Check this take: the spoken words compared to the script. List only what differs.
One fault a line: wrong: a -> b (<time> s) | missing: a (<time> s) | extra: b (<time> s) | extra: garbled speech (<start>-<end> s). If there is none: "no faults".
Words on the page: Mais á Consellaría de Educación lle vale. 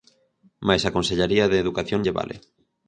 no faults